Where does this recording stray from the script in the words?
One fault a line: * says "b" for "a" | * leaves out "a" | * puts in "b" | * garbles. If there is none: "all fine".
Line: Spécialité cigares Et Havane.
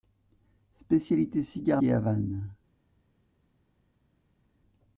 all fine